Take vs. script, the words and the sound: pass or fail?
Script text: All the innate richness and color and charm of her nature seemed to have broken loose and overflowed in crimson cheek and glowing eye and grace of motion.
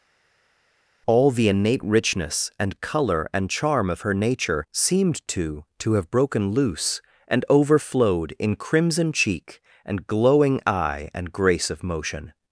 fail